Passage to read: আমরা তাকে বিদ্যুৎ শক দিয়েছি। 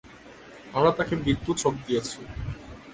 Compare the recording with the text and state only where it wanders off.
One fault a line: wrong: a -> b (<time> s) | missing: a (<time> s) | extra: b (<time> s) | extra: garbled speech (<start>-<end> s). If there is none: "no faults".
no faults